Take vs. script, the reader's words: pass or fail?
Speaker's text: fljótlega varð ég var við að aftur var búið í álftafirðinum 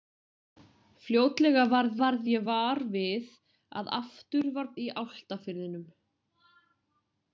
fail